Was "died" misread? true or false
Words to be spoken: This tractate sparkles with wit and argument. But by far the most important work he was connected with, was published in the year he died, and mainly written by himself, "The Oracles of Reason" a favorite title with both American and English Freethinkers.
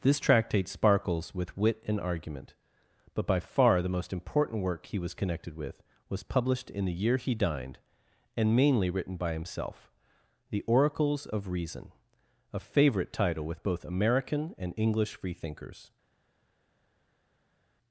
true